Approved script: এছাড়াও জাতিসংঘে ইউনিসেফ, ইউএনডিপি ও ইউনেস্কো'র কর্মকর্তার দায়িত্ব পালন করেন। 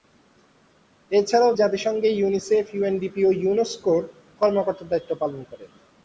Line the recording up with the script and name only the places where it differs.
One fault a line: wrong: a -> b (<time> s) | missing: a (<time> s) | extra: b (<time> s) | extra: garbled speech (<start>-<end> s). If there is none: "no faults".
no faults